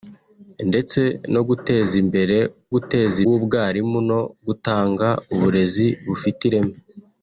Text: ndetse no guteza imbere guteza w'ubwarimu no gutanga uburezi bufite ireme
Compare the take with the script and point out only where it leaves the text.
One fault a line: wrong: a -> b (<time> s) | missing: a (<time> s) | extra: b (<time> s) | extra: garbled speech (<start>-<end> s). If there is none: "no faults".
no faults